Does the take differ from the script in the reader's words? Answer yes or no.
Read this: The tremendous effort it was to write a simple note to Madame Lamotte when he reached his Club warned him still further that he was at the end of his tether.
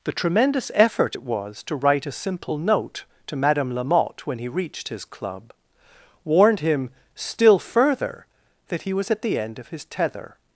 no